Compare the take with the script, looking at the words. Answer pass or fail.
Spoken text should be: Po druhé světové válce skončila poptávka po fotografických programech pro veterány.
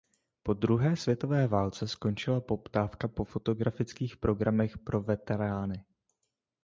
pass